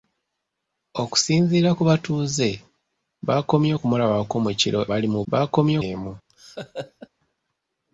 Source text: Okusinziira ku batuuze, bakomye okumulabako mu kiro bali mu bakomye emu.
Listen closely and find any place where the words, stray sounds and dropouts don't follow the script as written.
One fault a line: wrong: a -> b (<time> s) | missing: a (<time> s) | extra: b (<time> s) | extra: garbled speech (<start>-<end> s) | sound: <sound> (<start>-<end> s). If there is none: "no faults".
sound: laugh (6.3-7.1 s)